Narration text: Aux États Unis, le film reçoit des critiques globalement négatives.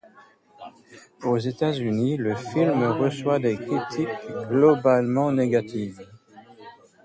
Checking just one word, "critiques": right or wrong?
right